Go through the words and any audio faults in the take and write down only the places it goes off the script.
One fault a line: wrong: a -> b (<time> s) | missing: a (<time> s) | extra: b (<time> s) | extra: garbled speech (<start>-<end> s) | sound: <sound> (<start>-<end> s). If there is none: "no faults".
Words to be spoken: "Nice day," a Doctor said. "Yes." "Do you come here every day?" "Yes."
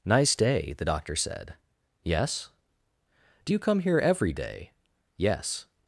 wrong: a -> the (0.7 s)